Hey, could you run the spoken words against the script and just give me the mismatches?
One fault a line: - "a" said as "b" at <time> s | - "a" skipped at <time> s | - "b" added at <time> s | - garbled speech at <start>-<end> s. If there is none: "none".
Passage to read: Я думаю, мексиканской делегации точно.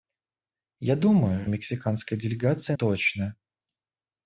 none